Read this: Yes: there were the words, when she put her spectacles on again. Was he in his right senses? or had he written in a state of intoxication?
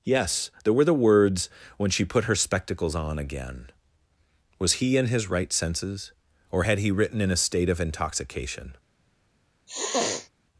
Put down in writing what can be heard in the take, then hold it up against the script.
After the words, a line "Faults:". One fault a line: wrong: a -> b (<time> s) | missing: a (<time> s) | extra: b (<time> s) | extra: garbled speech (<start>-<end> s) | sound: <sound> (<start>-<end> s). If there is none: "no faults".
Yes: there were the words, when she put her spectacles on again. Was he in his right senses? or had he written in a state of intoxication?
Faults:
sound: sniff (9.7-10.3 s)